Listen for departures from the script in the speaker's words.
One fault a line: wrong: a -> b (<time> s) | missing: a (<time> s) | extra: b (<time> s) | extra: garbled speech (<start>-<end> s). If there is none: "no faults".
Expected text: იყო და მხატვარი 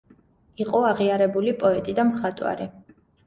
extra: აღიარებული პოეტი (0.9 s)